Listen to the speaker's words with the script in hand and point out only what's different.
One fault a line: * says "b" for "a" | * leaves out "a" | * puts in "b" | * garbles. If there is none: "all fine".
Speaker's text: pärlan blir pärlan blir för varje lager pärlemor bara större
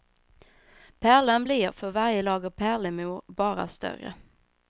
* leaves out "pärlan blir"